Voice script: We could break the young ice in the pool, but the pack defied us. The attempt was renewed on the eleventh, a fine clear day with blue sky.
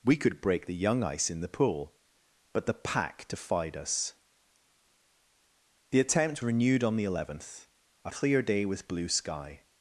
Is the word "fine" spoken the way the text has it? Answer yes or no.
no